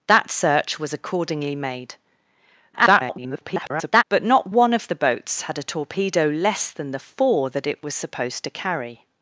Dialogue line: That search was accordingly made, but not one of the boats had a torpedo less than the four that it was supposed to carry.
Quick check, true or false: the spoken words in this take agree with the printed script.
false